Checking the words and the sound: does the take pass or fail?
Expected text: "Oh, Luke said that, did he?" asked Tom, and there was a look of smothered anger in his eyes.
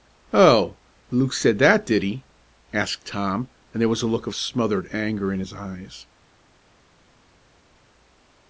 pass